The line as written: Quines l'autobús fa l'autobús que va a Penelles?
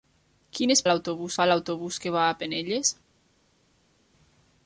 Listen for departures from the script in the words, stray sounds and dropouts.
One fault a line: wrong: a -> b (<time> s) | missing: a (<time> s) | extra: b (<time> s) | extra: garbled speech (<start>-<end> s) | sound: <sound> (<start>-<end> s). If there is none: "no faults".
no faults